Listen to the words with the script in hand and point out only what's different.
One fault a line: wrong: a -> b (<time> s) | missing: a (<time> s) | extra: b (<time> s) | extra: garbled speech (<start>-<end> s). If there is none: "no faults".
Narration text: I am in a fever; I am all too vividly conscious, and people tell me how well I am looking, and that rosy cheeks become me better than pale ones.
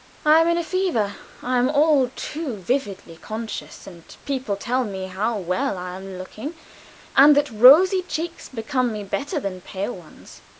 no faults